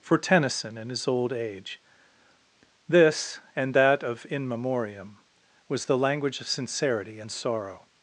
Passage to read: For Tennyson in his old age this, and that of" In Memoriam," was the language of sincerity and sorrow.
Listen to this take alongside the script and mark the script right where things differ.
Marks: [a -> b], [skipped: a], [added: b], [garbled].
For Tennyson in his old age this, and that of" In Memoriam," was the language of sincerity and sorrow.